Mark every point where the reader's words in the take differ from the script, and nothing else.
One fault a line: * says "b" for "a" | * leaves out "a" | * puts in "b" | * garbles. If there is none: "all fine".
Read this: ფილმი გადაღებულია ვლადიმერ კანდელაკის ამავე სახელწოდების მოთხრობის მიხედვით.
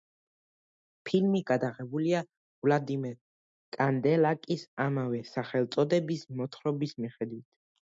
all fine